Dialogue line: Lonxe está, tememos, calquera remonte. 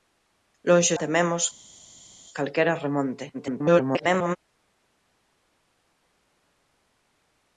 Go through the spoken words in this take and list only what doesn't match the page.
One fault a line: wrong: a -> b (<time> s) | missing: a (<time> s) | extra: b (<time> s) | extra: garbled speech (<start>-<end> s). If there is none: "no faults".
missing: está (0.9 s)
extra: garbled speech (3.3-4.4 s)